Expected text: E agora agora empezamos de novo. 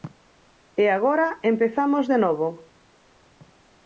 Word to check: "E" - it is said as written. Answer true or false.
true